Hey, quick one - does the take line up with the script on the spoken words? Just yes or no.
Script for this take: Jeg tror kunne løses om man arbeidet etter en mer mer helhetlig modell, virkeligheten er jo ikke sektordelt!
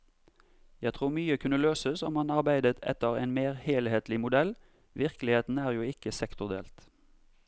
no